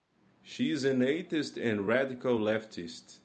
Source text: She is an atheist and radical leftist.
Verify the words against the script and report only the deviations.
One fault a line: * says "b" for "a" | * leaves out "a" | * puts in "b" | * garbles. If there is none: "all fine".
all fine